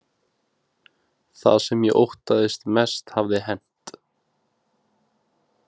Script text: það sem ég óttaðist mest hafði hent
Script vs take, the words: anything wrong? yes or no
no